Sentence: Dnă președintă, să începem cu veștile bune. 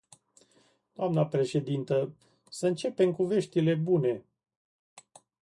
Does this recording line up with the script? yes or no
yes